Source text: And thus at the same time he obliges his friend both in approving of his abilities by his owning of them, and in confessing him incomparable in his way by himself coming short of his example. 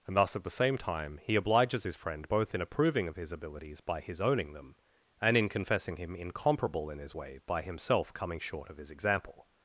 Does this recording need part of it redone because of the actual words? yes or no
yes